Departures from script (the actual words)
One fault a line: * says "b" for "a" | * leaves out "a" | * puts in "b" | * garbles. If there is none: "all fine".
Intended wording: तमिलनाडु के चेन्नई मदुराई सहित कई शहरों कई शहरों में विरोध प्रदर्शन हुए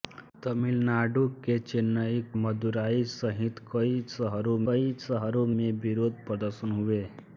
all fine